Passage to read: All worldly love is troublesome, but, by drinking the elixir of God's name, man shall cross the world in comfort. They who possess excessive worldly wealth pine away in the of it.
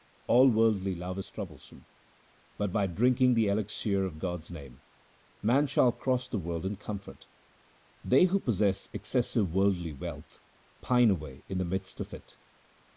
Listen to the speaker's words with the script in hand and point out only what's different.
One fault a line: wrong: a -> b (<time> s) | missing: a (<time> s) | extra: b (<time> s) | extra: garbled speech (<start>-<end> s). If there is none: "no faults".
extra: midst (11.6 s)